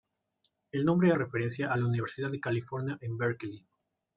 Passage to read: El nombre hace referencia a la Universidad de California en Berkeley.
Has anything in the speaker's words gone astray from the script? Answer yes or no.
yes